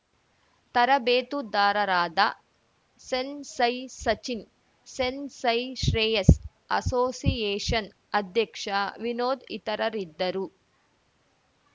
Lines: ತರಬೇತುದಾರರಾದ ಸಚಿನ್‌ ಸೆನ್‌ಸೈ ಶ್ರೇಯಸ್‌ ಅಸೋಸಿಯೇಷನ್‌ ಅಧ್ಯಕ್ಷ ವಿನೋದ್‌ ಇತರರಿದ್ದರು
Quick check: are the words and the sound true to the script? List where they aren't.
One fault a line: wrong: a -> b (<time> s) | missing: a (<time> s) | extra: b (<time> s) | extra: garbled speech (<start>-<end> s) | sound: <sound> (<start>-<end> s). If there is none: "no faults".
extra: ಸೆನ್‌ಸೈ (3.0 s)